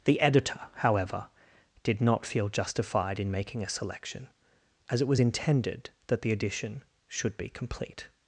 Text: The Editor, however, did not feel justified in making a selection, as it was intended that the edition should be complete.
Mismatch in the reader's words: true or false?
false